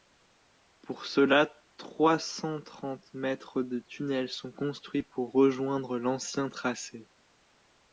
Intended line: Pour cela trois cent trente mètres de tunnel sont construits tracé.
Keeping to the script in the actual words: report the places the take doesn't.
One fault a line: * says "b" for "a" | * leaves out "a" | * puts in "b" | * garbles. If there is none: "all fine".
* puts in "pour rejoindre l'ancien"